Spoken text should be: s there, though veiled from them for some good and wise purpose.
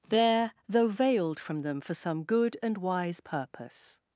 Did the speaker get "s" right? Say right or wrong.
wrong